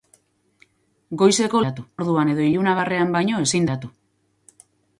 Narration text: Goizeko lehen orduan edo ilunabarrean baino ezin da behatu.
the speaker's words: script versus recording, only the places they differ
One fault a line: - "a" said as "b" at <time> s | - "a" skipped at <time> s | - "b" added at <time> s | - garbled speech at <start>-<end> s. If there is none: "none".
- "lehen" said as "behatu" at 1.6 s
- "da" skipped at 3.7 s